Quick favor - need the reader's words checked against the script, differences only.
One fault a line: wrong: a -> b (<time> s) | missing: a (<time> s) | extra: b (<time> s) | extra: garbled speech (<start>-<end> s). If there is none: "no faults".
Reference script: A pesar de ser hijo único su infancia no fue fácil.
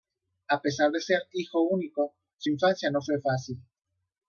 no faults